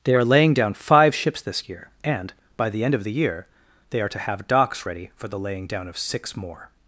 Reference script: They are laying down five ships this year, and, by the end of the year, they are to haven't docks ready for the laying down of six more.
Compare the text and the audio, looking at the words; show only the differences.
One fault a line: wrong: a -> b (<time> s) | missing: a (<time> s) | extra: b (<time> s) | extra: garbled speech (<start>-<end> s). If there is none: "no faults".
wrong: haven't -> have (4.2 s)